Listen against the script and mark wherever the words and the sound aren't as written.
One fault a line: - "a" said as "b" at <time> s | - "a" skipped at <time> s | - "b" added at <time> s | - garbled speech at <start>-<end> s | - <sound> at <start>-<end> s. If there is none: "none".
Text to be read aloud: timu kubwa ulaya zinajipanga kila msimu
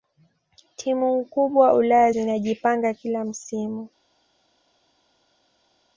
none